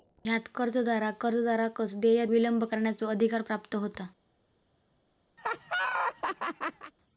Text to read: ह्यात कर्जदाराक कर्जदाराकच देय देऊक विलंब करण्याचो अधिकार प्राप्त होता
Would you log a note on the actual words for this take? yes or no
yes